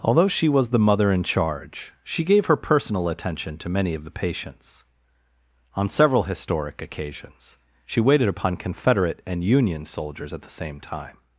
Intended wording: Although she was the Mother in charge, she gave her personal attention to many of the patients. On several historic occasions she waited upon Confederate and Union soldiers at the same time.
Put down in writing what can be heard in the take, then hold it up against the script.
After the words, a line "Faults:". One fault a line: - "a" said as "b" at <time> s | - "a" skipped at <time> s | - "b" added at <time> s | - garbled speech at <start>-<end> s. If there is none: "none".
Although she was the Mother in charge, she gave her personal attention to many of the patients. On several historic occasions she waited upon Confederate and Union soldiers at the same time.
Faults:
none